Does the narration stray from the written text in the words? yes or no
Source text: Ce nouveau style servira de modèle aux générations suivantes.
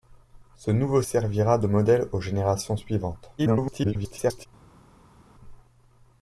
yes